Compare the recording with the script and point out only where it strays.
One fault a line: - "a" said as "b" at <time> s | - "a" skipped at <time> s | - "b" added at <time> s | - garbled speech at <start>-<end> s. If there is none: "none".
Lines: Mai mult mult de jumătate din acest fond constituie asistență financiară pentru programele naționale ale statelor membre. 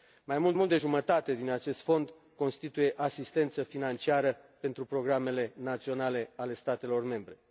none